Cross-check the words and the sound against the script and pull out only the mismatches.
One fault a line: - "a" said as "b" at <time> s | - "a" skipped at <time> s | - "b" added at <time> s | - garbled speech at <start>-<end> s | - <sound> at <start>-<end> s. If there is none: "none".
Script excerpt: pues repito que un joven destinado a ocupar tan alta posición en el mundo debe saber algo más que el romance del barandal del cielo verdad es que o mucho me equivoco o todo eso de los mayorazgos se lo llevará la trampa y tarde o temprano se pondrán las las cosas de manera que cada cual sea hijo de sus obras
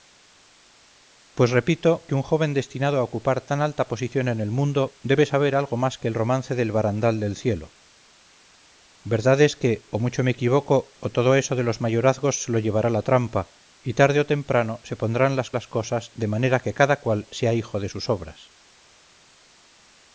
none